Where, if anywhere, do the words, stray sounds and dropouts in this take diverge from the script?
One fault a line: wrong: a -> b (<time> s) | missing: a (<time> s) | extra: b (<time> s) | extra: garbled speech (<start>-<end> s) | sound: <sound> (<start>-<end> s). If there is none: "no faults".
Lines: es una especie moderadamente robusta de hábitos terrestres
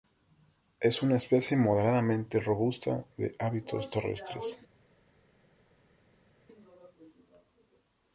no faults